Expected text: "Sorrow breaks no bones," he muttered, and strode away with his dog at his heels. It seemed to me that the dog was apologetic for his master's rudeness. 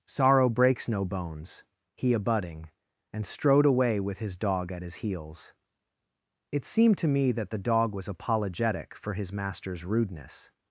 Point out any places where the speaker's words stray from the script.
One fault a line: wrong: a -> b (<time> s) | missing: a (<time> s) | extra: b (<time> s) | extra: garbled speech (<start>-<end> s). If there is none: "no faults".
wrong: muttered -> abutting (2.1 s)